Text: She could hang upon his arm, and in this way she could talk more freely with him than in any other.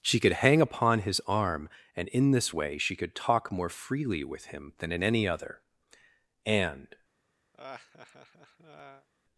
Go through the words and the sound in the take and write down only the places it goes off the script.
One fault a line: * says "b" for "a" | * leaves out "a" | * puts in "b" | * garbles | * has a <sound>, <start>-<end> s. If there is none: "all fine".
* puts in "And"
* has a laugh, 7.5-9.1 s